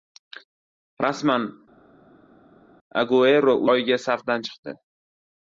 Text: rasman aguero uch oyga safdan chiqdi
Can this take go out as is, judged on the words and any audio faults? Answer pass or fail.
fail